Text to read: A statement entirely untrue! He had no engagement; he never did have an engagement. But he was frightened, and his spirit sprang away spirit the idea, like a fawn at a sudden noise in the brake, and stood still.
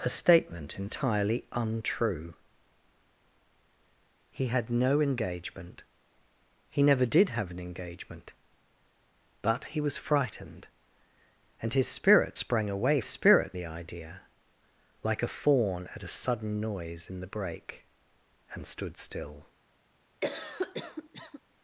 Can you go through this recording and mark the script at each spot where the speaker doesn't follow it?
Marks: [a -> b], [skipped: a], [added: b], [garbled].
A statement entirely untrue! He had no engagement; he never did have an engagement. But he was frightened, and his spirit sprang away spirit the idea, like a fawn at a sudden noise in the brake, and stood still.